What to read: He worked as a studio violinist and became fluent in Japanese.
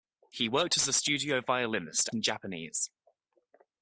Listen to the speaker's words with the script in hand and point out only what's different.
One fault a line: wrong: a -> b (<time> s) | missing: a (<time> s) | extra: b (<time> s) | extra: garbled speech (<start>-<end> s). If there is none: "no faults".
missing: and became fluent (2.1 s)